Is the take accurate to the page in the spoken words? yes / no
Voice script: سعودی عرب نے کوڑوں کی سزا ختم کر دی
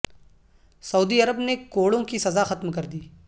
yes